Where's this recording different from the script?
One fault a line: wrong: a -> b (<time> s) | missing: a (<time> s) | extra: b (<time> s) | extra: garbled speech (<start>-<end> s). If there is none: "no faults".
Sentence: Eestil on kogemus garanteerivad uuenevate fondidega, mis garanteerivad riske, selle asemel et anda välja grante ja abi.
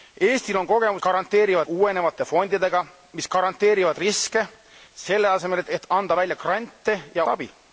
no faults